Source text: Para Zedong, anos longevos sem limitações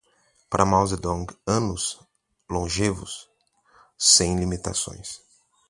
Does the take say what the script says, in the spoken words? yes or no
no